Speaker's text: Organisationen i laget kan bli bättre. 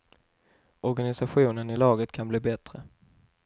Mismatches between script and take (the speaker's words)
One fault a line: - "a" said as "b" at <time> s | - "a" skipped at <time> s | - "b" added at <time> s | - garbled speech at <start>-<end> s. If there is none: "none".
none